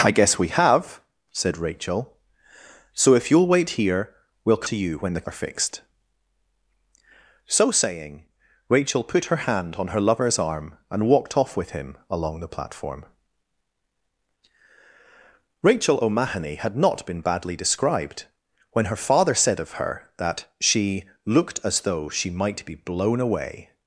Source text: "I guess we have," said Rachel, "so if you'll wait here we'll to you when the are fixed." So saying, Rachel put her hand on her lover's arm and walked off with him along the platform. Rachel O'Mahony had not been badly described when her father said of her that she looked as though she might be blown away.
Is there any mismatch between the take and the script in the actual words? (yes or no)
no